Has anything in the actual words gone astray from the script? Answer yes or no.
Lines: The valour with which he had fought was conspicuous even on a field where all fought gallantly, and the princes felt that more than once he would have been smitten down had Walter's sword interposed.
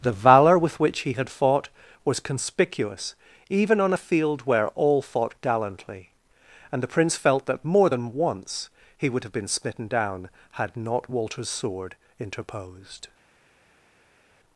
yes